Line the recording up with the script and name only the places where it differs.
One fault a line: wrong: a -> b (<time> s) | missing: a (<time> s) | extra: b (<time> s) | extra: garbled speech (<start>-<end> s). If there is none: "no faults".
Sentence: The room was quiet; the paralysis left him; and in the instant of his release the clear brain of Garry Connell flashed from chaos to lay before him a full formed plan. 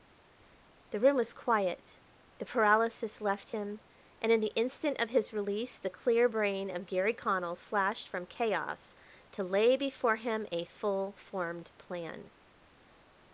no faults